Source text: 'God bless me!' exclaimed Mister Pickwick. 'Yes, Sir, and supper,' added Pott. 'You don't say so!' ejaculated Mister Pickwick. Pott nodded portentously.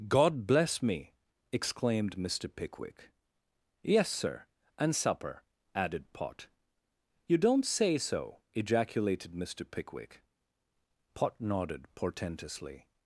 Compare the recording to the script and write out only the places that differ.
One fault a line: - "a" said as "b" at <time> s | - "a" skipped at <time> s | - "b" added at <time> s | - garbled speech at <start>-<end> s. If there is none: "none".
none